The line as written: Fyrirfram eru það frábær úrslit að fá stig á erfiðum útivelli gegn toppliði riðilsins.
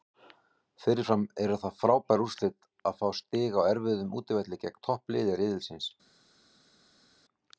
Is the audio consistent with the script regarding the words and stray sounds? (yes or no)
yes